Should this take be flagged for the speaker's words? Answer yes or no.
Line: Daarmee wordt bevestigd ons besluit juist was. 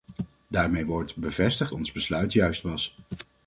no